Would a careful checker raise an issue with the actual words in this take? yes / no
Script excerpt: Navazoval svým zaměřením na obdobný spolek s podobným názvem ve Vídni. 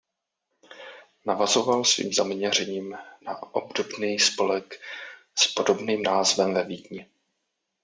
no